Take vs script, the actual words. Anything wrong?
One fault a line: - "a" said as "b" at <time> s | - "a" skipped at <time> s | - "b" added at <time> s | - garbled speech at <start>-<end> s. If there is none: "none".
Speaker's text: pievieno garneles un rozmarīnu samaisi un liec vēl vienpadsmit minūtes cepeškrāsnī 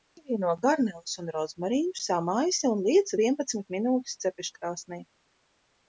- "vēl" skipped at 3.1 s